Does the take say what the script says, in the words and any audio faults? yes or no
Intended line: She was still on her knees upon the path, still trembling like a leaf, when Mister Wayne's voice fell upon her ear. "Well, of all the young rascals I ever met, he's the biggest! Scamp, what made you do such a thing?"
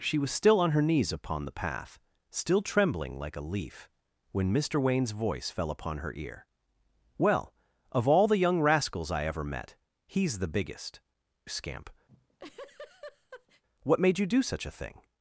no